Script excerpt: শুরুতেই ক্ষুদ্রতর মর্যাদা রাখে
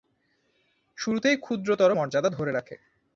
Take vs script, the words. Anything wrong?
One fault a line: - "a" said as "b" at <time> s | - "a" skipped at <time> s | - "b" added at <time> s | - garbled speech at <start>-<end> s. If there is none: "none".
- "ধরে" added at 2.3 s